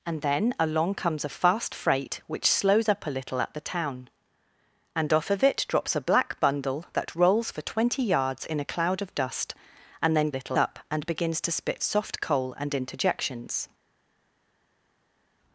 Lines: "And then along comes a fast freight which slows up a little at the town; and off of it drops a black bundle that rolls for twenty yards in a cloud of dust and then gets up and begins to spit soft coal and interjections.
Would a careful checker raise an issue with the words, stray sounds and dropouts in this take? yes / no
yes